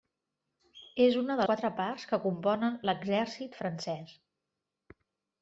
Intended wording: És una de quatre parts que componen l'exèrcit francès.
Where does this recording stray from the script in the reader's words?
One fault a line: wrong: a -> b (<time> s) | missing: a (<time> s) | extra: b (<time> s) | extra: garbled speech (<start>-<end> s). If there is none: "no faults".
no faults